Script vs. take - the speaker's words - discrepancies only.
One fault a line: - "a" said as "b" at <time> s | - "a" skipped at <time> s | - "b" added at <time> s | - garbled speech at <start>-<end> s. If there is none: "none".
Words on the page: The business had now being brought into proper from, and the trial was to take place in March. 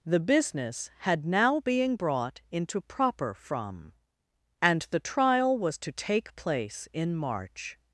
none